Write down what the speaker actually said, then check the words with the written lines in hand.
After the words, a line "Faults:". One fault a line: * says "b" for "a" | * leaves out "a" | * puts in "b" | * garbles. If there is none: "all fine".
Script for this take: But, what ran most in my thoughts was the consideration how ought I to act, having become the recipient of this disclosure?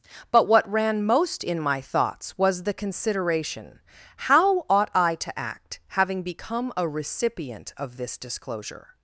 But, what ran most in my thoughts was the consideration how ought I to act, having become a recipient of this disclosure?
Faults:
* says "a" for "the"